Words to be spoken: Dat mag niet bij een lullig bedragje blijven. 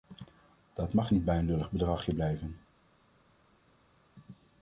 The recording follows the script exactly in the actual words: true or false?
true